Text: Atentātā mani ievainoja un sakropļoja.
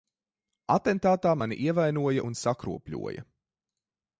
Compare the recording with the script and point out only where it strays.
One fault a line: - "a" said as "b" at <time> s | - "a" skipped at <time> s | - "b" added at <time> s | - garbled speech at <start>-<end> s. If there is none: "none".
none